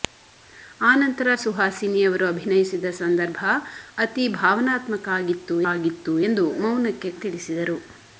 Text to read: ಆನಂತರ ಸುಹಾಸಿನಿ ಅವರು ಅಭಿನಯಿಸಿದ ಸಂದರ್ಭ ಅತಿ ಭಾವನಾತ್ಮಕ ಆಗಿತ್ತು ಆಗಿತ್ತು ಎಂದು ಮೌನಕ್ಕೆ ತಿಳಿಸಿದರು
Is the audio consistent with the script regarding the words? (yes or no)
yes